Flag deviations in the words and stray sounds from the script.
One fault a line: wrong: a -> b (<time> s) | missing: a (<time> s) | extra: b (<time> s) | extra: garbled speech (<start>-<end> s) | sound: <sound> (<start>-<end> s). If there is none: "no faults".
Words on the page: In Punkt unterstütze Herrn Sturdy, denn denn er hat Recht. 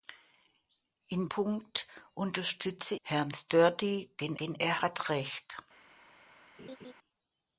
sound: laugh (6.6-6.9 s)